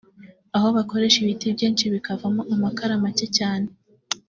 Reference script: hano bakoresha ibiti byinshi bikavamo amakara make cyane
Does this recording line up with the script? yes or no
no